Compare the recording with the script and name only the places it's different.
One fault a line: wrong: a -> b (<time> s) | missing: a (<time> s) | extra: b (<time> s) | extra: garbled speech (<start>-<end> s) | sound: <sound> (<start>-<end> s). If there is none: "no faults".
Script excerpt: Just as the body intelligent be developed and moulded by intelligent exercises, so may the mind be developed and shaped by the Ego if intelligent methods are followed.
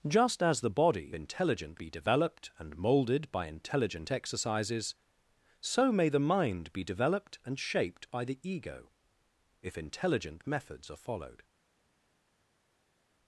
no faults